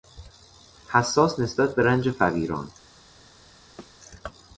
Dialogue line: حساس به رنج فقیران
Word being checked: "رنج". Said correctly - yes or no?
yes